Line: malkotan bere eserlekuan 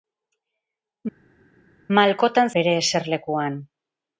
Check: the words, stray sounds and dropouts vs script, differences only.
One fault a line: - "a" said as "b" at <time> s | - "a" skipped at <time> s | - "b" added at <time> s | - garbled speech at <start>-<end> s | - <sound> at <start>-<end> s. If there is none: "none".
none